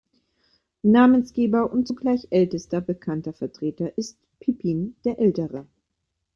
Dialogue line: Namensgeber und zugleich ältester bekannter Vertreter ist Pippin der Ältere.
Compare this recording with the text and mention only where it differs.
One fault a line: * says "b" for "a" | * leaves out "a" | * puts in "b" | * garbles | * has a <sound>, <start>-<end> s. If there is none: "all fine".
all fine